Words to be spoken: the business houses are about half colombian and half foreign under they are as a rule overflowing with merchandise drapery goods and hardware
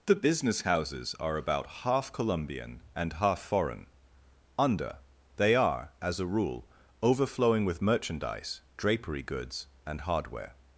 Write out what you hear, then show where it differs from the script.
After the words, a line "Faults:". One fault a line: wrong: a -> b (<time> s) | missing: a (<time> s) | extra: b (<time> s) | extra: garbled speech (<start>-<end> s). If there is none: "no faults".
the business houses are about half colombian and half foreign under they are as a rule overflowing with merchandise drapery goods and hardware
Faults:
no faults